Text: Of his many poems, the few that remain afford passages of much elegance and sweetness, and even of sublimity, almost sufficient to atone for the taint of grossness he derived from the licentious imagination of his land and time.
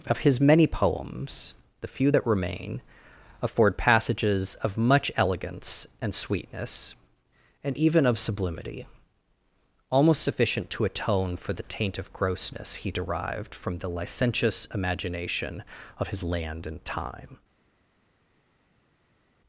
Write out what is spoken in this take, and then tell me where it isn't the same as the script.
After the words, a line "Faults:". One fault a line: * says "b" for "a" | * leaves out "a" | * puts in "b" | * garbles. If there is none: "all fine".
Of his many poems, the few that remain afford passages of much elegance and sweetness, and even of sublimity, almost sufficient to atone for the taint of grossness he derived from the licentious imagination of his land and time.
Faults:
all fine